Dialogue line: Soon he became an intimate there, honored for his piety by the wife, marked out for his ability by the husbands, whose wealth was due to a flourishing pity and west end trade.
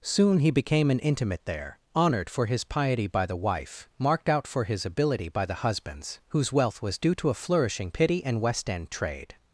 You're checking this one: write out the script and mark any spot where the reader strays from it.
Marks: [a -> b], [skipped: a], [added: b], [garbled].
Soon he became an intimate there, honored for his piety by the wife, marked out for his ability by the husbands, whose wealth was due to a flourishing pity and west end trade.